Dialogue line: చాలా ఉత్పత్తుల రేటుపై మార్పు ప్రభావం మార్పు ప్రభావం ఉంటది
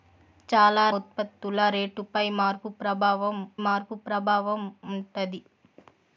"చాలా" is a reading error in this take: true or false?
false